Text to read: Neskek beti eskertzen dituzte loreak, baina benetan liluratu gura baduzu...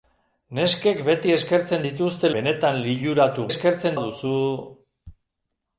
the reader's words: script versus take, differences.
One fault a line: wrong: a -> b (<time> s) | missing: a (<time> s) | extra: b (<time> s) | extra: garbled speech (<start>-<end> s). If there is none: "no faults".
missing: loreak baina (2.3 s)
wrong: gura -> eskertzen (3.5 s)